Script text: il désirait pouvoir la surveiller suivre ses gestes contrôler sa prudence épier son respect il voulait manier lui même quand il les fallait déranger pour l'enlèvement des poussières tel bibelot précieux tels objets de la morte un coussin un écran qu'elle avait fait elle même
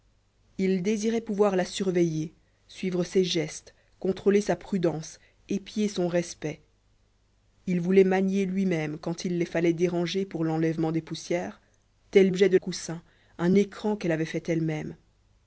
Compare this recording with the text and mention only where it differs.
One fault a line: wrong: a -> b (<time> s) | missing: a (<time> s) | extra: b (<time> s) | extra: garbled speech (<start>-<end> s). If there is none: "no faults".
missing: bibelot précieux tels (12.3 s)
missing: la morte un (12.6 s)